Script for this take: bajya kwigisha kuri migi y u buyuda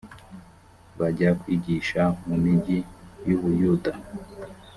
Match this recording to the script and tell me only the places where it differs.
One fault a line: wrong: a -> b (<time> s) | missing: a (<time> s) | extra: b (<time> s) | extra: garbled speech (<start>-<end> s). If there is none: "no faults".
wrong: kuri -> mu (2.3 s)